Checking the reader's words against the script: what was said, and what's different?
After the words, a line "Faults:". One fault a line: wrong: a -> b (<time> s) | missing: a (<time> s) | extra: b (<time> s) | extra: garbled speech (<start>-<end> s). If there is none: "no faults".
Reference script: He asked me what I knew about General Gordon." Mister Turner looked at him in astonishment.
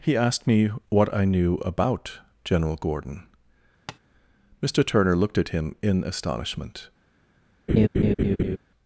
He asked me what I knew about General Gordon." Mister Turner looked at him in astonishment.
Faults:
no faults